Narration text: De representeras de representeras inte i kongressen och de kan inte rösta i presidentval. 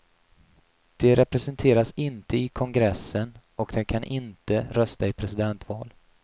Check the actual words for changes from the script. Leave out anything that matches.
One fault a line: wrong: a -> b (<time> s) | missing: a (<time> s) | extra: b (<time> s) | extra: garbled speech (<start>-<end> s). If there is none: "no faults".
missing: de representeras (1.9 s)